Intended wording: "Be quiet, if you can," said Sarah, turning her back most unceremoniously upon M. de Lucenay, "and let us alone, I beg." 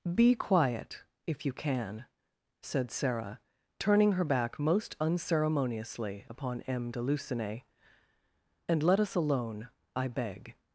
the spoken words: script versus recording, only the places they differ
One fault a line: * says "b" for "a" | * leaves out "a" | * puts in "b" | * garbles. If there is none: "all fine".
all fine